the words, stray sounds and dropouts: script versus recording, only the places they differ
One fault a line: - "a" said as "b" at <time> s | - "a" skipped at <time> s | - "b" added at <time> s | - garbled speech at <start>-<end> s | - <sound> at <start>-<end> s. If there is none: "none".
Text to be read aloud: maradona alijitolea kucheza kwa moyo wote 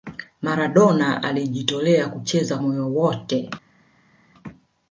- "kwa" skipped at 2.6 s